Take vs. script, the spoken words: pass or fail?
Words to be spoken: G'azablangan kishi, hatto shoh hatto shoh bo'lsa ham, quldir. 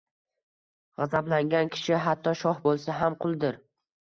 fail